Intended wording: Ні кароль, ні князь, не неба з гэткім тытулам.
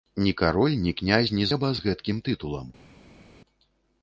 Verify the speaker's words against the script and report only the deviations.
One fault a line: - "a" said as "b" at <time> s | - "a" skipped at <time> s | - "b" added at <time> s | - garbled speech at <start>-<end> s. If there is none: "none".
none